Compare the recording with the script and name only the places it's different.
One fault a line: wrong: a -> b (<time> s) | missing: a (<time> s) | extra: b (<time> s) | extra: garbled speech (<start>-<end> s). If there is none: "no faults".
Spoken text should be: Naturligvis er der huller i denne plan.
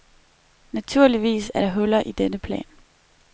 no faults